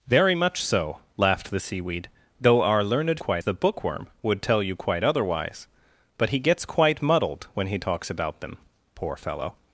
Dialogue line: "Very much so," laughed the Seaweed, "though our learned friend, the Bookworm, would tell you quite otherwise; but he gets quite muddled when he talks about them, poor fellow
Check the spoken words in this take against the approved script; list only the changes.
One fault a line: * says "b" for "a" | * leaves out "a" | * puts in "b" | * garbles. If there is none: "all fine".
* says "quite" for "friend"